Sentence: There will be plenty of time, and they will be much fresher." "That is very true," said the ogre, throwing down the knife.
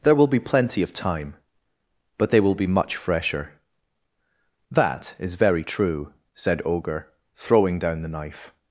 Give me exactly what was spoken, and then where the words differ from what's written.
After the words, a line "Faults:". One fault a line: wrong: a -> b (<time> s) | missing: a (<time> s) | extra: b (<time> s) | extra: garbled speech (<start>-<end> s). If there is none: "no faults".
There will be plenty of time, but they will be much fresher." "That is very true," said ogre, throwing down the knife.
Faults:
wrong: and -> but (2.2 s)
missing: the (6.6 s)